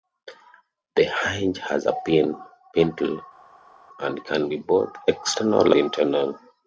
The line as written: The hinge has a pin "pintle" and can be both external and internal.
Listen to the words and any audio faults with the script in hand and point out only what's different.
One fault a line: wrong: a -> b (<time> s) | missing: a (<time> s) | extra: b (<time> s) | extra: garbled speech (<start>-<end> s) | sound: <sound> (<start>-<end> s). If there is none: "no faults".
missing: and (5.7 s)